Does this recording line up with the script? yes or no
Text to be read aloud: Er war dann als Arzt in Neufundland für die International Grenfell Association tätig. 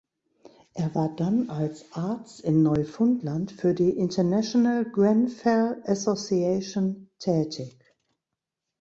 yes